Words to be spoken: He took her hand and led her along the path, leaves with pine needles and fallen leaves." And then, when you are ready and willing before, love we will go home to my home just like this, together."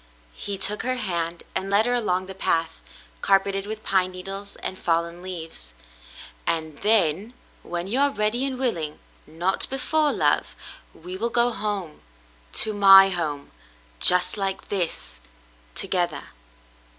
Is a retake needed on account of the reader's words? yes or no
yes